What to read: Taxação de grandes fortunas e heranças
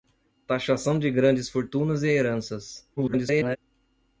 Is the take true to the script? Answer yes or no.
no